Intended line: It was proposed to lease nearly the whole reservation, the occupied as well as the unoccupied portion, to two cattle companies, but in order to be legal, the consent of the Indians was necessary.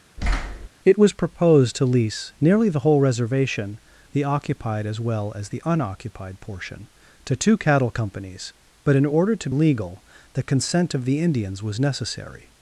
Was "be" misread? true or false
true